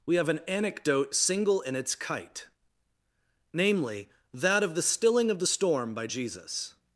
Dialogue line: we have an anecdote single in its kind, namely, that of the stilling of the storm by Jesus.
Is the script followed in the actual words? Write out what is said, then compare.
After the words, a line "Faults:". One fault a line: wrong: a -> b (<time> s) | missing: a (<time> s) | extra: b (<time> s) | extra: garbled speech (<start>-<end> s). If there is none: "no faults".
we have an anecdote single in its kite, namely, that of the stilling of the storm by Jesus.
Faults:
wrong: kind -> kite (1.9 s)